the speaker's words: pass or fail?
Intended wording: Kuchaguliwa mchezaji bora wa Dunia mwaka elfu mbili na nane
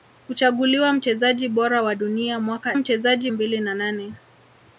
fail